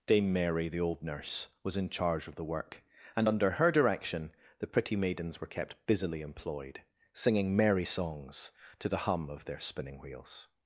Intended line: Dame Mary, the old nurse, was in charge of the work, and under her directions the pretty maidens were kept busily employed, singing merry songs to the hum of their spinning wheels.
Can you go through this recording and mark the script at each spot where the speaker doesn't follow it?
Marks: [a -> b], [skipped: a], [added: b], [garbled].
Dame Mary, the old nurse, was in charge of the work, and under her [directions -> direction] the pretty maidens were kept busily employed, singing merry songs to the hum of their spinning wheels.